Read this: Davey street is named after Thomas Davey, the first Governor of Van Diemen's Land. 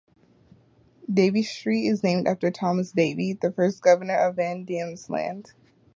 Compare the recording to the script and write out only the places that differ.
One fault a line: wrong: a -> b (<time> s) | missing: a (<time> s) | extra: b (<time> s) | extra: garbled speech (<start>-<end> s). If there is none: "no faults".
no faults